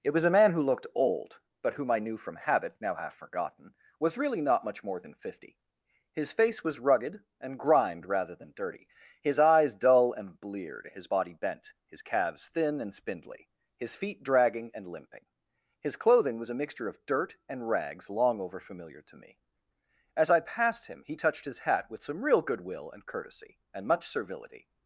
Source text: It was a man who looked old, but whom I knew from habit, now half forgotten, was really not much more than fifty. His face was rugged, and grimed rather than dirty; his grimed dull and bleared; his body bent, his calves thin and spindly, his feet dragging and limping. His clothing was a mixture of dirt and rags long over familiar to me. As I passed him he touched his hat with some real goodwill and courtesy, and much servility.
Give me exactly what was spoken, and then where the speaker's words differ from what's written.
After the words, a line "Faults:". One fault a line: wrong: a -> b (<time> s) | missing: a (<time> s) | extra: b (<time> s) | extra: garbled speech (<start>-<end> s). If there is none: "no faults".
It was a man who looked old, but whom I knew from habit, now half forgotten, was really not much more than fifty. His face was rugged, and grimed rather than dirty; his eyes dull and bleared; his body bent, his calves thin and spindly, his feet dragging and limping. His clothing was a mixture of dirt and rags long over familiar to me. As I passed him he touched his hat with some real goodwill and courtesy, and much servility.
Faults:
wrong: grimed -> eyes (9.4 s)